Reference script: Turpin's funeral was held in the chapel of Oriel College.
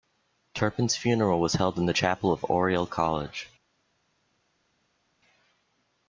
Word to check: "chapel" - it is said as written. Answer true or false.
true